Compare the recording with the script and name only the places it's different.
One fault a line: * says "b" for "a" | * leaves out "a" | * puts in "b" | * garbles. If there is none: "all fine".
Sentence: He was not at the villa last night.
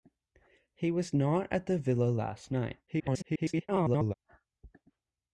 * garbles